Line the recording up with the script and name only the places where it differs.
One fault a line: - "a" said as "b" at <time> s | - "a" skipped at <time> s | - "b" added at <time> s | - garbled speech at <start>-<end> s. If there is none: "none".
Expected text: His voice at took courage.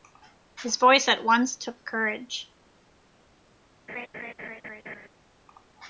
- "once" added at 1.2 s